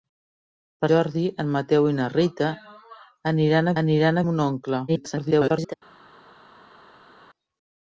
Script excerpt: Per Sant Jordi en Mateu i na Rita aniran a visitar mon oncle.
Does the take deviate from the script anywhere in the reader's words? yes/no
yes